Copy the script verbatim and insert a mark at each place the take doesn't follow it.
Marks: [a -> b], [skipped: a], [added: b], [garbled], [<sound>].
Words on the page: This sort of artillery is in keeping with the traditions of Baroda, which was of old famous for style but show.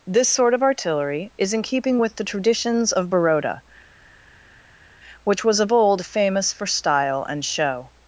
This sort of artillery is in keeping with the traditions of Baroda, which was of old famous for style [but -> and] show.